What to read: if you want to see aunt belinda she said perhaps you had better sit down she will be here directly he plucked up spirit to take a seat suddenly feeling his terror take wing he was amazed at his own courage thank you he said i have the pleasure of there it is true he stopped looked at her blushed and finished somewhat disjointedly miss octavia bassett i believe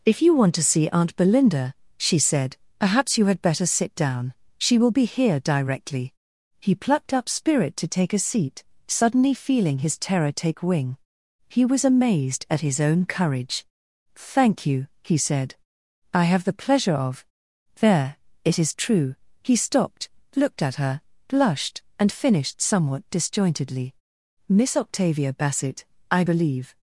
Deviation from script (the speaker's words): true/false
false